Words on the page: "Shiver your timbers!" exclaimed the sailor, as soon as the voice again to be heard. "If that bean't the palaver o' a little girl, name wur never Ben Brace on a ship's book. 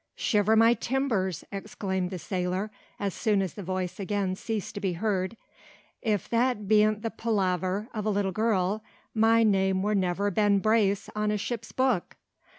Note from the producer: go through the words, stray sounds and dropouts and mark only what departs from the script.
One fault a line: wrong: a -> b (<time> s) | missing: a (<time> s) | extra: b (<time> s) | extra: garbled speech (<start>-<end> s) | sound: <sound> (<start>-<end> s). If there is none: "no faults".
wrong: your -> my (0.6 s)
extra: ceased (4.3 s)
extra: my (9.1 s)